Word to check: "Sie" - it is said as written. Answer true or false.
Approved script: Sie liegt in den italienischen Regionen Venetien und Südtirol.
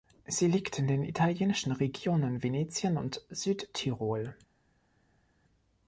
true